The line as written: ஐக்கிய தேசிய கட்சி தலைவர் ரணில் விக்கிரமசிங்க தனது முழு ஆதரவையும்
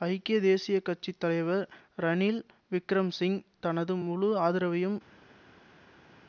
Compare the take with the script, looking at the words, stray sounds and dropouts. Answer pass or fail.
pass